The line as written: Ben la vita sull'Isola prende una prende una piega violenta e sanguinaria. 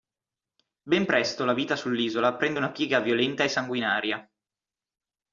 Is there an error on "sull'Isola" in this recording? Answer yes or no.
no